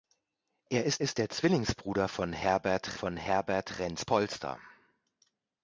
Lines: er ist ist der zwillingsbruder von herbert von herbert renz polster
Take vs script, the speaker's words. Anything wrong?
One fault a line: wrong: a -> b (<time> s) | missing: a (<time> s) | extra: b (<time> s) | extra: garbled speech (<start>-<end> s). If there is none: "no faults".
no faults